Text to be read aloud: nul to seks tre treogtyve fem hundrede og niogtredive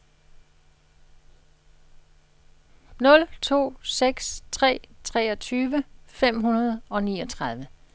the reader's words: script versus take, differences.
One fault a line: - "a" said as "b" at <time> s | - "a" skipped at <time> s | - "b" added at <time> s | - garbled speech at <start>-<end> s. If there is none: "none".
none